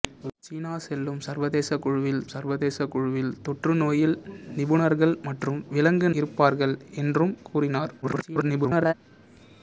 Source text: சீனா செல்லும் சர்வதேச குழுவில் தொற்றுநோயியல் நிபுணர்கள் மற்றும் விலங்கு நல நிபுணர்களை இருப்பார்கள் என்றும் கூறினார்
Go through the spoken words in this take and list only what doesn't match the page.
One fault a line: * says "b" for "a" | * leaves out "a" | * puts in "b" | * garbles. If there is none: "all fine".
* puts in "சர்வதேச குழுவில்"
* leaves out "நல நிபுணர்களை"
* garbles